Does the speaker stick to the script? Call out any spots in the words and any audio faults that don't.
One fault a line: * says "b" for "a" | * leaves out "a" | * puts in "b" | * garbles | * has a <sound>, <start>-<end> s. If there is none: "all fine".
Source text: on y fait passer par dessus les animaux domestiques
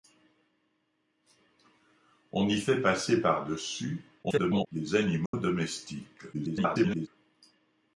* garbles
* has a dropout, 5.3-5.3 s
* garbles